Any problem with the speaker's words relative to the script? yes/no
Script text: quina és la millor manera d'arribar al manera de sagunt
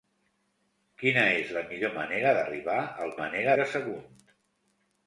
no